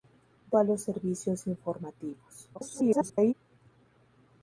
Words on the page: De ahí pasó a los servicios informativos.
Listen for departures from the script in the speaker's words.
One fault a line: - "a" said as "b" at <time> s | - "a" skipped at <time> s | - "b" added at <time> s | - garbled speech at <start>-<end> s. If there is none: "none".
- "ahí pasó" skipped at 0.6 s
- garbled speech at 2.5-3.3 s